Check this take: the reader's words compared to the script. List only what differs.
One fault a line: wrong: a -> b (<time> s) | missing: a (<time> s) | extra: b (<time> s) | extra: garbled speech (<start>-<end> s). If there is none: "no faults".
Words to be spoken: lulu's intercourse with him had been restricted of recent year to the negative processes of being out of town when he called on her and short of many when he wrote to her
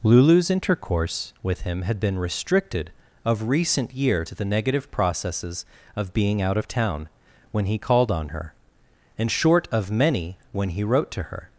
no faults